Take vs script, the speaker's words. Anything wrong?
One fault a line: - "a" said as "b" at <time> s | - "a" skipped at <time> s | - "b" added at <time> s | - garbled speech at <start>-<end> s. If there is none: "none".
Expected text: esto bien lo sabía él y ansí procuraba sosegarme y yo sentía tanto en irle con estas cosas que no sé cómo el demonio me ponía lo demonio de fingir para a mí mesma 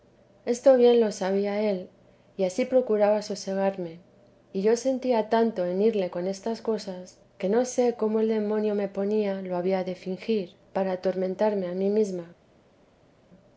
- "demonio" said as "había" at 9.6 s
- "atormentarme" added at 10.9 s